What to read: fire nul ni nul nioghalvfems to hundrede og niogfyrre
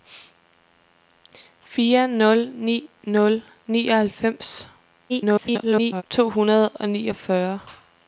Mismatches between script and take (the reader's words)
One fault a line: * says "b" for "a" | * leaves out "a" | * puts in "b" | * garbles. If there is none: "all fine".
* garbles